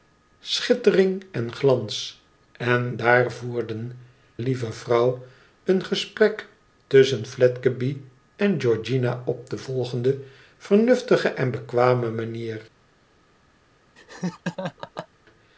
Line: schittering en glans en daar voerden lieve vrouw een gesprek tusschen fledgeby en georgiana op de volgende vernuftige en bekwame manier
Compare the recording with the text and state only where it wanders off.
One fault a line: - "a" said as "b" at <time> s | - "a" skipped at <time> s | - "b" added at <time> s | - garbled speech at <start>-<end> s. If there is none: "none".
none